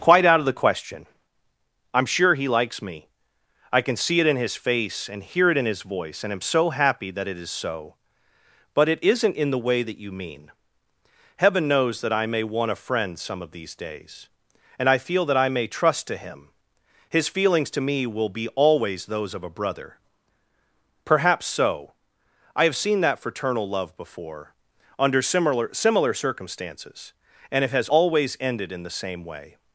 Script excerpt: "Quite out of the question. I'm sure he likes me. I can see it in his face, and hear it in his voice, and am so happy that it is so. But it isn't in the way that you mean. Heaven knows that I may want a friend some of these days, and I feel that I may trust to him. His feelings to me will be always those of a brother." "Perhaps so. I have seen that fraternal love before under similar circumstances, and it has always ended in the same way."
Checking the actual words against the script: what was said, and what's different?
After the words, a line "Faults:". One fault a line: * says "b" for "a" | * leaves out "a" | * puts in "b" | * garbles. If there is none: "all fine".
"Quite out of the question. I'm sure he likes me. I can see it in his face, and hear it in his voice, and am so happy that it is so. But it isn't in the way that you mean. Heaven knows that I may want a friend some of these days, and I feel that I may trust to him. His feelings to me will be always those of a brother." "Perhaps so. I have seen that fraternal love before under similar similar circumstances, and it has always ended in the same way."
Faults:
* puts in "similar"